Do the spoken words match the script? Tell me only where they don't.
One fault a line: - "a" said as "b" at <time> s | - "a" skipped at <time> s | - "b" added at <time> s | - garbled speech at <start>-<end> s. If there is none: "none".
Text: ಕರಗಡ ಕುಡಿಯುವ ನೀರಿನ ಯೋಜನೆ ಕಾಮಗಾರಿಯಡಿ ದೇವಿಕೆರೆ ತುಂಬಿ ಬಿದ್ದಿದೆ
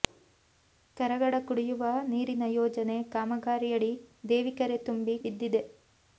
none